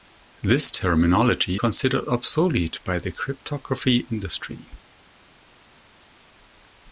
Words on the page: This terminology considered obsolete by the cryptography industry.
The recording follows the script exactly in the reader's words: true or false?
true